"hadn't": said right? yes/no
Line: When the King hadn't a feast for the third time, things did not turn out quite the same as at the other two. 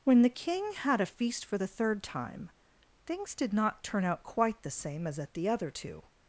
no